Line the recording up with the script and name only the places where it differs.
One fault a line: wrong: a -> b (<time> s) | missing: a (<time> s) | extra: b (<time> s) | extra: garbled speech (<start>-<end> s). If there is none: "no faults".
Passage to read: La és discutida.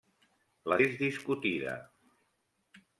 no faults